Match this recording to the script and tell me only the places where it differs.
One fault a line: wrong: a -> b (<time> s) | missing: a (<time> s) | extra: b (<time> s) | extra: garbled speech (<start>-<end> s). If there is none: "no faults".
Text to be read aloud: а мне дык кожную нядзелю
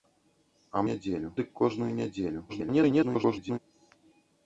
wrong: мне -> нядзелю (0.9 s)
extra: garbled speech (2.5-3.6 s)